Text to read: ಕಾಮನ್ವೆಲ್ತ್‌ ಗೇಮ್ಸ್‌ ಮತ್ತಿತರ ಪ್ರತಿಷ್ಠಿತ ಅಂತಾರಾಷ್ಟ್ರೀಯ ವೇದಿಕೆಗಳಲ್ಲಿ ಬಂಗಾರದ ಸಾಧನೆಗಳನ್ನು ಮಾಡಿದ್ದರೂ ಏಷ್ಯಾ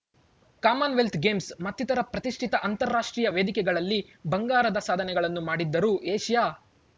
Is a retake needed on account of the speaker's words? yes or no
no